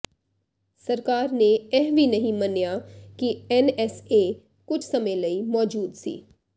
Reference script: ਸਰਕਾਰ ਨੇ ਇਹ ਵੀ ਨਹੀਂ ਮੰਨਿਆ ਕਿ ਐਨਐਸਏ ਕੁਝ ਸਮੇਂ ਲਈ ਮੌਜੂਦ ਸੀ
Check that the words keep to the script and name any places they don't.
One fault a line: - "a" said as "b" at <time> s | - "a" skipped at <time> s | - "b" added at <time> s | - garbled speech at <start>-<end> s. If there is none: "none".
none